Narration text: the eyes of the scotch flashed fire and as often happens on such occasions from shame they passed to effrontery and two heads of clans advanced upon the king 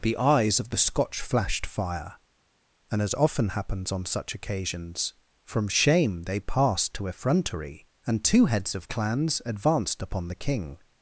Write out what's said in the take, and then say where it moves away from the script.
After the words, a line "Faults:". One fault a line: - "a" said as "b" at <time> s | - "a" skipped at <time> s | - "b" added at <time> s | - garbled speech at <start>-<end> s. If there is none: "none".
the eyes of the scotch flashed fire and as often happens on such occasions from shame they passed to effrontery and two heads of clans advanced upon the king
Faults:
none